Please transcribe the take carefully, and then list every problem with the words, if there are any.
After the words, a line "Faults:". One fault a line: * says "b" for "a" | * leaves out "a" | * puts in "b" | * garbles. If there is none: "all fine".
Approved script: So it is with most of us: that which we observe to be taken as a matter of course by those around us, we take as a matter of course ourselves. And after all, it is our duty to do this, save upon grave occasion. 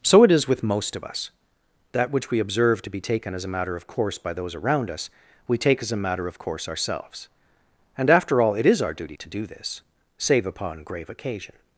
So it is with most of us: that which we observe to be taken as a matter of course by those around us, we take as a matter of course ourselves. And after all, it is our duty to do this, save upon grave occasion.
Faults:
all fine